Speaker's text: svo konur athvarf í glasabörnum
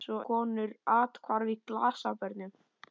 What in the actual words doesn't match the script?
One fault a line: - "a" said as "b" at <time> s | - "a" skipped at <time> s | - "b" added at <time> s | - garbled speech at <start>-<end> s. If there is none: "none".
none